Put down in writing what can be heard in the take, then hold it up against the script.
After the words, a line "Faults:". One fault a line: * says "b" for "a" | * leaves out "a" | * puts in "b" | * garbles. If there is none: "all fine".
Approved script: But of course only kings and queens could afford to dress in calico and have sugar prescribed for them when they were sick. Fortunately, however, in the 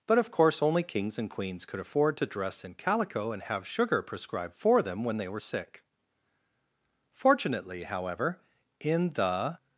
But of course only kings and queens could afford to dress in calico and have sugar prescribed for them when they were sick. Fortunately, however, in the
Faults:
all fine